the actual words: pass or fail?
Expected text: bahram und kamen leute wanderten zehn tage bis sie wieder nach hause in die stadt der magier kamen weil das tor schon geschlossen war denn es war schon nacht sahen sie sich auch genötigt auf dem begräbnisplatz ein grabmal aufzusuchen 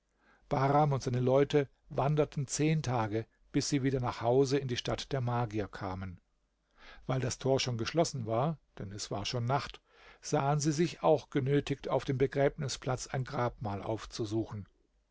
fail